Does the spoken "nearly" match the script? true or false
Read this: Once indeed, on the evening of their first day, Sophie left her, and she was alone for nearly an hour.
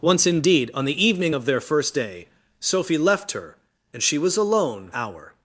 false